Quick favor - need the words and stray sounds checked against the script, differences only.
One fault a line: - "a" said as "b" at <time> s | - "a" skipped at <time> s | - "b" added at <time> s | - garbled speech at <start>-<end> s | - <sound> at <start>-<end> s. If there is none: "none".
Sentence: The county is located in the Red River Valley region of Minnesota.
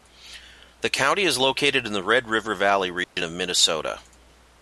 - dropout at 3.0-3.2 s